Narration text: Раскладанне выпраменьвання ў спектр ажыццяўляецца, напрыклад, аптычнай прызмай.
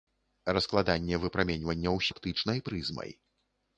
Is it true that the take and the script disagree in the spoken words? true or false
true